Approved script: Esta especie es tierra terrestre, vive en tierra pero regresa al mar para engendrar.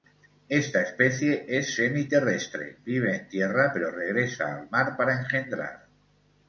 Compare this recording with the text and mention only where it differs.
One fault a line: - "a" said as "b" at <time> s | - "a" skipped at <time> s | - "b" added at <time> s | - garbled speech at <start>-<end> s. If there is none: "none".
- "tierra" said as "semi" at 1.8 s